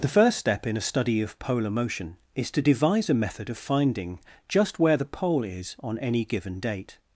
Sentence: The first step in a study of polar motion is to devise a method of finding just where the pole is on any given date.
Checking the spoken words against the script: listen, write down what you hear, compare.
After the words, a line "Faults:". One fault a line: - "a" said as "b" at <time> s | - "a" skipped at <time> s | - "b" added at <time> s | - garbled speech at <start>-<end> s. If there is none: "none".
The first step in a study of polar motion is to devise a method of finding just where the pole is on any given date.
Faults:
none